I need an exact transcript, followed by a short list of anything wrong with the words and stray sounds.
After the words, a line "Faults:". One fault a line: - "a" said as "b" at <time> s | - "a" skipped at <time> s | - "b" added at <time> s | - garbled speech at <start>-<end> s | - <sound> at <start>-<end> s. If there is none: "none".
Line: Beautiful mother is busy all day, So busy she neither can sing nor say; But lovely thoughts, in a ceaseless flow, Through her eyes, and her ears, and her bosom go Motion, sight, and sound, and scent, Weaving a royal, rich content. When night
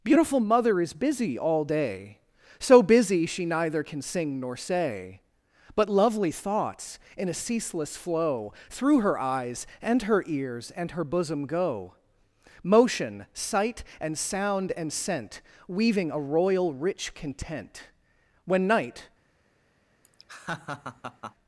Beautiful mother is busy all day, So busy she neither can sing nor say; But lovely thoughts, in a ceaseless flow, Through her eyes, and her ears, and her bosom go Motion, sight, and sound, and scent, Weaving a royal, rich content. When night
Faults:
- laugh at 20.0-21.3 s